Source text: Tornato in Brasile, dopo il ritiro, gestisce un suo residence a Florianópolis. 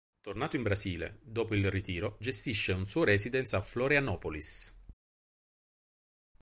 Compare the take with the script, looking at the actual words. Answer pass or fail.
pass